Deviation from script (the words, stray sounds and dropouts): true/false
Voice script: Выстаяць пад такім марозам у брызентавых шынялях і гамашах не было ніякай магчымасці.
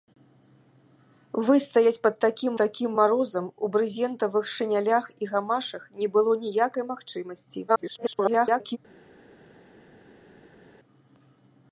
true